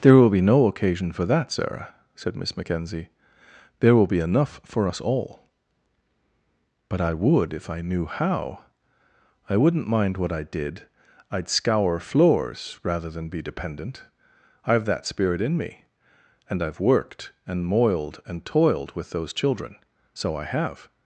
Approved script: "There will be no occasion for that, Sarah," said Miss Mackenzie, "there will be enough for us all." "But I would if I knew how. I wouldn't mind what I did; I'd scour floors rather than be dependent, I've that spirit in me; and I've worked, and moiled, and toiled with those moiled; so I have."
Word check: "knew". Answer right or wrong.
right